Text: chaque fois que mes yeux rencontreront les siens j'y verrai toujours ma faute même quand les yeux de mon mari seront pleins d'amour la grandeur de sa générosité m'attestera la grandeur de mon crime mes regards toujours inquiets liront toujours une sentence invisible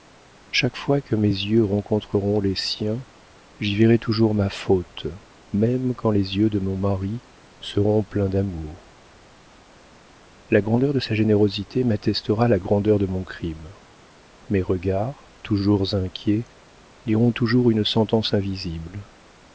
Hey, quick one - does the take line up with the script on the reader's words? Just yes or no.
yes